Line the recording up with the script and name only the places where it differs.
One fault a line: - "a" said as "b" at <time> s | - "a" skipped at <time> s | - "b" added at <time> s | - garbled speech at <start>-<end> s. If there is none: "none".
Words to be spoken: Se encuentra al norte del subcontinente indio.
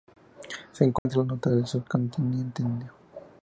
none